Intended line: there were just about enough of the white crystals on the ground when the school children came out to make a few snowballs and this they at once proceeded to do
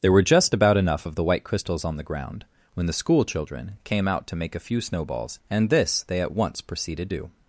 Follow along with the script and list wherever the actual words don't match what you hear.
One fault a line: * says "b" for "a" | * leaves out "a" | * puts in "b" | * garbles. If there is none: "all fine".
* leaves out "to"